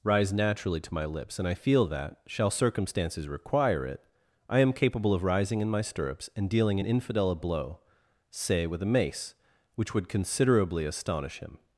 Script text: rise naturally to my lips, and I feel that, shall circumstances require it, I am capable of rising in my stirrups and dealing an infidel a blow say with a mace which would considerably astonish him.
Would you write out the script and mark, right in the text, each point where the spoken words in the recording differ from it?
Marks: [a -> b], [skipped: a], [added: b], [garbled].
rise naturally to my lips, and I feel that, shall circumstances require it, I am capable of rising in my stirrups and dealing an infidel a blow say with a mace which would considerably astonish him.